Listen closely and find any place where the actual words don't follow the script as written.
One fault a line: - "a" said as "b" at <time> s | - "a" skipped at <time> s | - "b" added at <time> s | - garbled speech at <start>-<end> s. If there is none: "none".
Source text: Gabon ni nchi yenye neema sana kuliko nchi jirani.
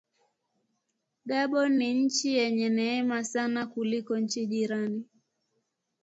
none